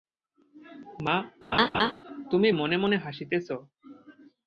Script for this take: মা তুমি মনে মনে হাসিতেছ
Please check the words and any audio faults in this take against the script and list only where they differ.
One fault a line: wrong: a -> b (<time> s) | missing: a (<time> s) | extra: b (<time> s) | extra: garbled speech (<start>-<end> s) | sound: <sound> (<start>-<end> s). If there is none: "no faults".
sound: laugh (1.5-1.9 s)